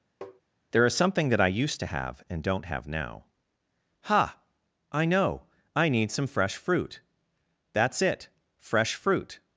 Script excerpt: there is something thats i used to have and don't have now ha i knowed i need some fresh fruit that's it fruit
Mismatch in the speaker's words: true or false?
true